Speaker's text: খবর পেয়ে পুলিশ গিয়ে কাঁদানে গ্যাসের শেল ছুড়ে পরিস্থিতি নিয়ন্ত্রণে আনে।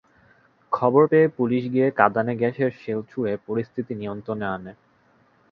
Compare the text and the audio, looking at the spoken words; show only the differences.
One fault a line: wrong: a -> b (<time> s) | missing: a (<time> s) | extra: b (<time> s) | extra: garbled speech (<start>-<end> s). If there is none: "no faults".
no faults